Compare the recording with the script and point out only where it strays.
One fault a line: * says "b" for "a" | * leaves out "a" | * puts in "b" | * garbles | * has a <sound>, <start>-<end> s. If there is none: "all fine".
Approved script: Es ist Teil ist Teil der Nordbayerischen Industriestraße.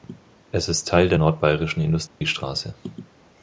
* leaves out "ist Teil"
* has a dropout, 2.1-2.2 s